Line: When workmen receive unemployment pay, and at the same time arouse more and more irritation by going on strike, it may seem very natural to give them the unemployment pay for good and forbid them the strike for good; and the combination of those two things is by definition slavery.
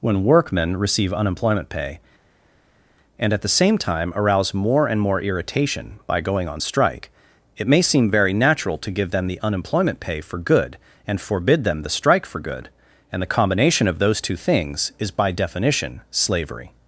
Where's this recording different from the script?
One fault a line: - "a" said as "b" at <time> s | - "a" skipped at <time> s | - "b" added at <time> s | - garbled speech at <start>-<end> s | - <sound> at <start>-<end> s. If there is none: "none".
none